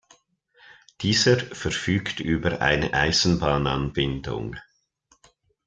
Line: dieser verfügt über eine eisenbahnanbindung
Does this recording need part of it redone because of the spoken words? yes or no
no